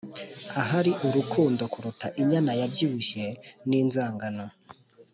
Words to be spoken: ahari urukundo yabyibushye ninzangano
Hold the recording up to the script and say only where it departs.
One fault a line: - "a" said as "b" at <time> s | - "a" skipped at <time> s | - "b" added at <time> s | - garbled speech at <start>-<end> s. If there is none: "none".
- "kuruta inyana" added at 1.7 s